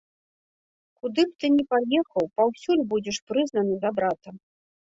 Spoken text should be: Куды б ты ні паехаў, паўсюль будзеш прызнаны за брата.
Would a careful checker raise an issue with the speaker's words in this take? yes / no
no